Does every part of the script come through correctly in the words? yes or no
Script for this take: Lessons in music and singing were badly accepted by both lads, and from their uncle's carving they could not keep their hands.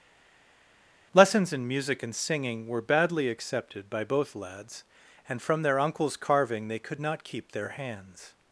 yes